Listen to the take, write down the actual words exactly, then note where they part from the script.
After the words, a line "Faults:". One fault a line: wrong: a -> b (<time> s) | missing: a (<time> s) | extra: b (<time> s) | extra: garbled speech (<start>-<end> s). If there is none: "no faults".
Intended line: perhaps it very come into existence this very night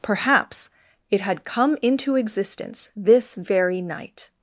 perhaps it had come into existence this very night
Faults:
wrong: very -> had (1.2 s)